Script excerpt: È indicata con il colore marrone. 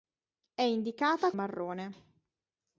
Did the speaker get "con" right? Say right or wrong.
wrong